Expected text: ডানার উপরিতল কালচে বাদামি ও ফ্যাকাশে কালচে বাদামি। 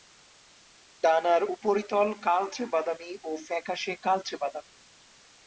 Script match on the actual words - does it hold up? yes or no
yes